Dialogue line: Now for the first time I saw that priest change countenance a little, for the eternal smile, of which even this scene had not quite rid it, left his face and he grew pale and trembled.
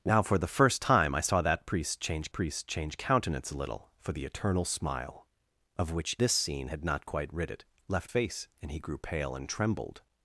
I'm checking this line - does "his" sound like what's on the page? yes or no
no